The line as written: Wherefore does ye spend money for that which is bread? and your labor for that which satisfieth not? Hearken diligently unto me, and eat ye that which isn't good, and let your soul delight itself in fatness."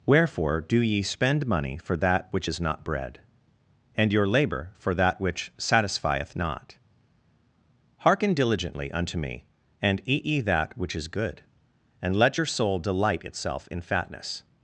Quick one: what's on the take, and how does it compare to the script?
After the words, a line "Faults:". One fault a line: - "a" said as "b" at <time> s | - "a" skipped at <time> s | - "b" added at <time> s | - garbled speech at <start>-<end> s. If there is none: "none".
Wherefore do ye spend money for that which is not bread? and your labor for that which satisfieth not? Hearken diligently unto me, and eat ye that which is good, and let your soul delight itself in fatness."
Faults:
- "does" said as "do" at 0.6 s
- "not" added at 2.6 s
- "isn't" said as "is" at 11.0 s